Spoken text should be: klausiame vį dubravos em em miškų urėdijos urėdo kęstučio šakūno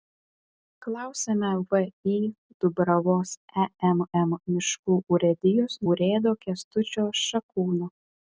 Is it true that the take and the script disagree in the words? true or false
false